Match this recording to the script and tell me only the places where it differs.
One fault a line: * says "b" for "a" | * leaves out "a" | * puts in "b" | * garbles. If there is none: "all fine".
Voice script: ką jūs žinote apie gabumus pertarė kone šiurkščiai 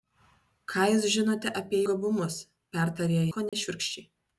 all fine